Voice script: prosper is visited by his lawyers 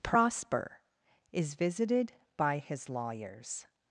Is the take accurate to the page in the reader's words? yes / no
yes